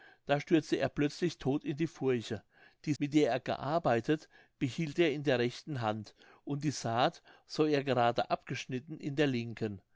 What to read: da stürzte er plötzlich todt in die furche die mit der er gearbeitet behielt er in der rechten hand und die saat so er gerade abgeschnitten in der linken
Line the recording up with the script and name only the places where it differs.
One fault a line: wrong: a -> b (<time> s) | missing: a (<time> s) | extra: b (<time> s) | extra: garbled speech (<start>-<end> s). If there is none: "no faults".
no faults